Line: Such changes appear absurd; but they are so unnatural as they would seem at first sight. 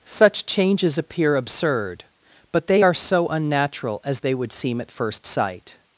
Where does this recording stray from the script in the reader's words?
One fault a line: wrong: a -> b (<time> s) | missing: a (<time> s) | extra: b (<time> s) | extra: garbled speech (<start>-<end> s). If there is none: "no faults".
no faults